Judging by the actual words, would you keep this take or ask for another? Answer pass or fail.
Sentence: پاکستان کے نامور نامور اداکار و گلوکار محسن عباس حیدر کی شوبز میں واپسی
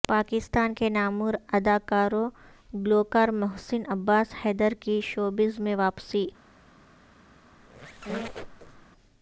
fail